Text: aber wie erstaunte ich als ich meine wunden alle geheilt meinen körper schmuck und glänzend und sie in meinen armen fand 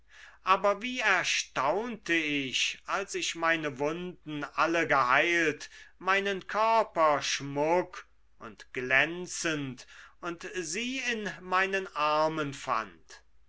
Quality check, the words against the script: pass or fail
pass